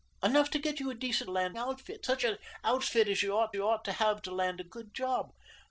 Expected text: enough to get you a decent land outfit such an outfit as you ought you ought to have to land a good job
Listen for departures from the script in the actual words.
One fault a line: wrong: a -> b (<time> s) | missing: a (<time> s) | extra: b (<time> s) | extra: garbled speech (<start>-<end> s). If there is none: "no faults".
no faults